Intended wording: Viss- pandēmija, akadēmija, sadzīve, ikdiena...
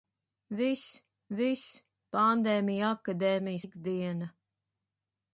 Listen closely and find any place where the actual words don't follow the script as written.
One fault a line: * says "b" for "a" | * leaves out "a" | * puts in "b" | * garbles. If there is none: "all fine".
* puts in "viss"
* leaves out "sadzīve"